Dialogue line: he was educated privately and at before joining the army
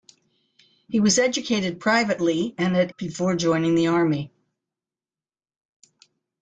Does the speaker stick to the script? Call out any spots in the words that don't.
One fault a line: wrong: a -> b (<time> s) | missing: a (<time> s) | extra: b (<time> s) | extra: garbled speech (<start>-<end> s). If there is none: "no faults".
no faults